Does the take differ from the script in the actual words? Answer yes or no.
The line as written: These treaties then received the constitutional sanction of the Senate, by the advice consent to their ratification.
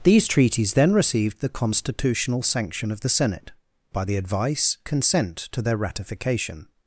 no